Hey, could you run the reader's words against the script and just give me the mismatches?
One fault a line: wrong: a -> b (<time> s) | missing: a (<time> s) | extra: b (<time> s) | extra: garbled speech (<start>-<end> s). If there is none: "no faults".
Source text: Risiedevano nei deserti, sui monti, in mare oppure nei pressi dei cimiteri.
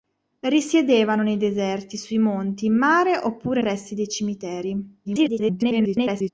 missing: nei (3.6 s)
extra: garbled speech (5.0-6.3 s)